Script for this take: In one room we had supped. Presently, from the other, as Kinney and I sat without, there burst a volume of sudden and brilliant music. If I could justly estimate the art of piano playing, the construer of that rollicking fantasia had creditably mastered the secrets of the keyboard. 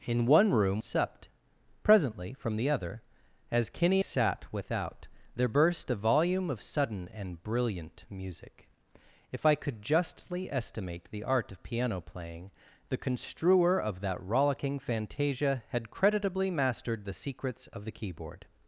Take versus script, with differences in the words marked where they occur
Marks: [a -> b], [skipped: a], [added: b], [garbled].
In one room [skipped: we had] supped. Presently, from the other, as Kinney [skipped: and I] sat without, there burst a volume of sudden and brilliant music. If I could justly estimate the art of piano playing, the construer of that rollicking fantasia had creditably mastered the secrets of the keyboard.